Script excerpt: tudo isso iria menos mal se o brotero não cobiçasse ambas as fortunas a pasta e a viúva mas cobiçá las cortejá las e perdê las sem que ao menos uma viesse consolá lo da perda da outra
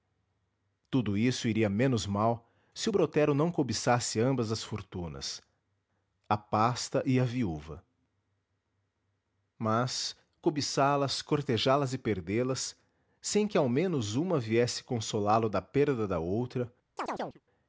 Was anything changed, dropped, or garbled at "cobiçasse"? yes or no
no